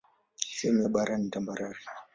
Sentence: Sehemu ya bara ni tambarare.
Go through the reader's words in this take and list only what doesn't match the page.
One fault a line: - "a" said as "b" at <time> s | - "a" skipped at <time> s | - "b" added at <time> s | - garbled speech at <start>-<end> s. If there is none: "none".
none